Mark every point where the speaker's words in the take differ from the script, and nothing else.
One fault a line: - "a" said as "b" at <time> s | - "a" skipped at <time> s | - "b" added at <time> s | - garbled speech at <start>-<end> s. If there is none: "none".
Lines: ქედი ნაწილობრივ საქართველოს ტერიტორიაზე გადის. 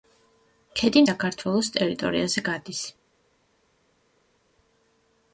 - "ნაწილობრივ" skipped at 1.0 s